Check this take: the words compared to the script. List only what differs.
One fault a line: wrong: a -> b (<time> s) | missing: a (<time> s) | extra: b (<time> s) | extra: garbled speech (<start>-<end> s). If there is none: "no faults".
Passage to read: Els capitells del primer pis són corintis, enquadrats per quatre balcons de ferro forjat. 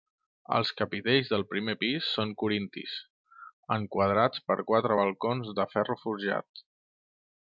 no faults